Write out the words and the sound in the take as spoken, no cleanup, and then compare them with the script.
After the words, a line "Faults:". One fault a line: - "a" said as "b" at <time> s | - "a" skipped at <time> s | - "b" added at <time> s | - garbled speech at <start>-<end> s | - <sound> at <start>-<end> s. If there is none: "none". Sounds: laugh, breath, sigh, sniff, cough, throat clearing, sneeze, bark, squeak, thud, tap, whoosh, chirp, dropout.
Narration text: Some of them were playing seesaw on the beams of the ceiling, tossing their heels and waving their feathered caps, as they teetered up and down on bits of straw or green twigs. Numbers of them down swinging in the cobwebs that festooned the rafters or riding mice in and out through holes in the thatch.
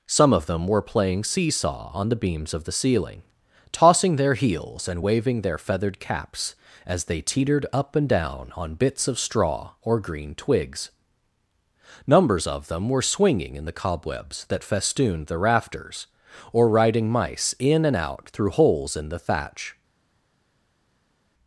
Some of them were playing seesaw on the beams of the ceiling, tossing their heels and waving their feathered caps, as they teetered up and down on bits of straw or green twigs. Numbers of them were swinging in the cobwebs that festooned the rafters or riding mice in and out through holes in the thatch.
Faults:
- "down" said as "were" at 12.9 s